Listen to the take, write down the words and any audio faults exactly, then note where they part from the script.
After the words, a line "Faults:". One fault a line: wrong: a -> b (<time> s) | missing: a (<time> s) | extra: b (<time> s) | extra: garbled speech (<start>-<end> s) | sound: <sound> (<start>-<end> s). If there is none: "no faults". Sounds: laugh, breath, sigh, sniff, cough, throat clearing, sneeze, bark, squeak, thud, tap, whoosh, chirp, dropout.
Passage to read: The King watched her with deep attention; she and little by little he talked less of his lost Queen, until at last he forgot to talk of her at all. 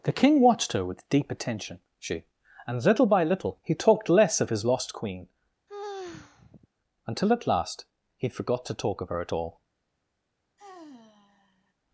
The King watched her with deep attention; she and little by little he talked less of his lost Queen, until at last he forgot to talk of her at all.
Faults:
sound: sigh (5.7-6.7 s)
sound: sigh (10.6-11.7 s)